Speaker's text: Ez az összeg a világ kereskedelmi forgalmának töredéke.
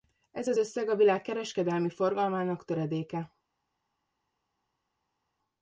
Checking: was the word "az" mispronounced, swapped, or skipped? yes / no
no